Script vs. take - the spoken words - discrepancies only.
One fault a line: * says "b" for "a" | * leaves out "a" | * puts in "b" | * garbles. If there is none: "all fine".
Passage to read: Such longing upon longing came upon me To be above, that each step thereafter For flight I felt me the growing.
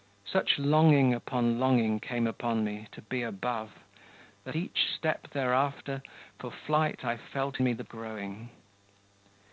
all fine